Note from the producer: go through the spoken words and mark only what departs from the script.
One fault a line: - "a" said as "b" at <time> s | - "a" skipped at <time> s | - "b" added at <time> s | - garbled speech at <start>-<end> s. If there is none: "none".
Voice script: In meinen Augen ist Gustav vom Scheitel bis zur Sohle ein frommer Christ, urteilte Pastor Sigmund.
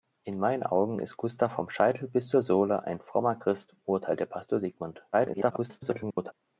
- garbled speech at 5.1-6.3 s